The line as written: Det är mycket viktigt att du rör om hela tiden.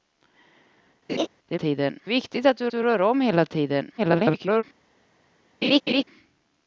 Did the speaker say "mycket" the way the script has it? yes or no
no